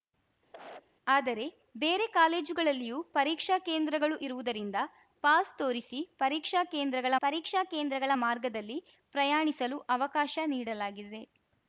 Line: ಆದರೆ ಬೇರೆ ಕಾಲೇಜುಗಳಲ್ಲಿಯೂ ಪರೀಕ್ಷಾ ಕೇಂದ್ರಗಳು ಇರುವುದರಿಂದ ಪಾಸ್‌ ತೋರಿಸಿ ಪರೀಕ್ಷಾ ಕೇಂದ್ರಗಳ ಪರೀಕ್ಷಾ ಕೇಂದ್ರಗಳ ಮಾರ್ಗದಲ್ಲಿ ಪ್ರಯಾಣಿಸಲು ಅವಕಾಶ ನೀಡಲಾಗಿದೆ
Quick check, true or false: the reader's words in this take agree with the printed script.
true